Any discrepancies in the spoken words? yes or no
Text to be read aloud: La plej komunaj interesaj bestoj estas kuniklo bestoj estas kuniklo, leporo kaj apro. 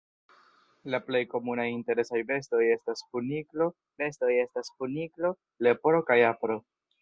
no